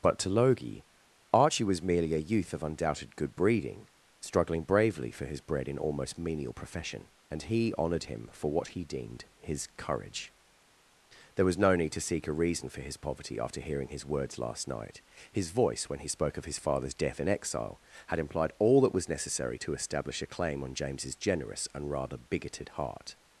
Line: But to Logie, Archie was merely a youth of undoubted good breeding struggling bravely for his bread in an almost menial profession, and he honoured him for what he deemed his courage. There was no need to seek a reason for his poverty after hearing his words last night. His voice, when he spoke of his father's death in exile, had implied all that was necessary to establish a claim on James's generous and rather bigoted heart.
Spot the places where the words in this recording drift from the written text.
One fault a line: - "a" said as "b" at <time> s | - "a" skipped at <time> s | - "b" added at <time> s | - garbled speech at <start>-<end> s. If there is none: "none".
- "an" skipped at 5.8 s